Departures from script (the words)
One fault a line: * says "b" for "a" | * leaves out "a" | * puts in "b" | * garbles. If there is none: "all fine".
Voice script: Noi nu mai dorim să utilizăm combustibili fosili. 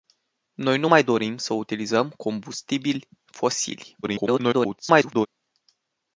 * garbles